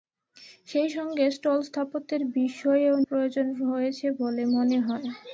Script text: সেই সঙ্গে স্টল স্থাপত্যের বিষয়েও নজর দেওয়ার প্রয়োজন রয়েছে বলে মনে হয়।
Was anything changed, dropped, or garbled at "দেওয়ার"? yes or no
yes